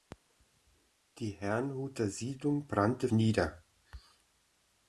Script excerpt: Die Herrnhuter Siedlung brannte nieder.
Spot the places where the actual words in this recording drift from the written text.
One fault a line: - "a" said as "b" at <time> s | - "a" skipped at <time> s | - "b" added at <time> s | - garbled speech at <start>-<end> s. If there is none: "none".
none